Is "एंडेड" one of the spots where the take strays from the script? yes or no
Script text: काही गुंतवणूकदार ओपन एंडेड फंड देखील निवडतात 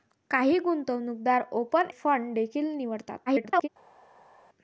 yes